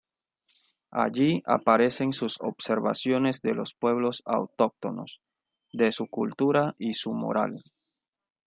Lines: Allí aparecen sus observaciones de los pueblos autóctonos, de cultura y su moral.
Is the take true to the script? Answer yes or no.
no